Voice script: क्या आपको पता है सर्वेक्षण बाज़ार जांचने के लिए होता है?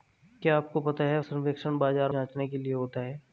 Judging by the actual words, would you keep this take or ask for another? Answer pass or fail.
pass